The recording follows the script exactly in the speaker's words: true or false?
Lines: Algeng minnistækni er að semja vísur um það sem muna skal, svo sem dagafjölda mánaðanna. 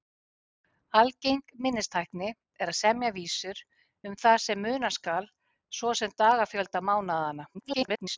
false